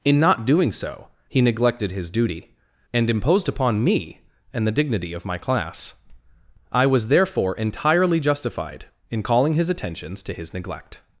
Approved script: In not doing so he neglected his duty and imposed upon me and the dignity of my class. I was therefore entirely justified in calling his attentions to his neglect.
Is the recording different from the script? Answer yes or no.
no